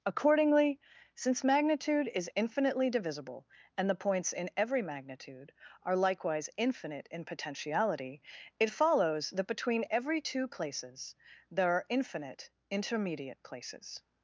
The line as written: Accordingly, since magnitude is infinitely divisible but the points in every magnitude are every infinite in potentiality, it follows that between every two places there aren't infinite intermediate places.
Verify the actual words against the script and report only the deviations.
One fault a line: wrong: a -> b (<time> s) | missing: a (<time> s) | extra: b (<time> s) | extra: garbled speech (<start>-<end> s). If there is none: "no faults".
wrong: but -> and (3.8 s)
wrong: every -> likewise (6.0 s)
wrong: aren't -> are (11.7 s)